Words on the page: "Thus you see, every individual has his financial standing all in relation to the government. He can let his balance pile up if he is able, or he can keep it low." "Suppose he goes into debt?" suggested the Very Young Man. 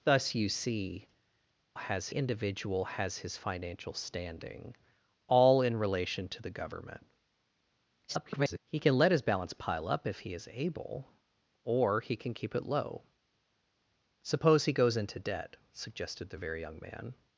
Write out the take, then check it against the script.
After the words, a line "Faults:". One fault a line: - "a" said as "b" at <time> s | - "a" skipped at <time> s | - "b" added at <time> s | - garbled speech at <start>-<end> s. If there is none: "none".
"Thus you see, has individual has his financial standing all in relation to the government. [garbled] He can let his balance pile up if he is able, or he can keep it low." "Suppose he goes into debt?" suggested the Very Young Man.
Faults:
- "every" said as "has" at 1.8 s
- garbled speech at 8.1-8.6 s